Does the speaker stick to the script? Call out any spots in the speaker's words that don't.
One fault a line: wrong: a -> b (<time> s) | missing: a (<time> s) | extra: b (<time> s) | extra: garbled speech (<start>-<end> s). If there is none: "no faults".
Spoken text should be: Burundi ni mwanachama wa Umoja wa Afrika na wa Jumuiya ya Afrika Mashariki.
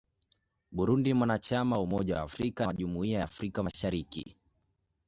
missing: na (2.7 s)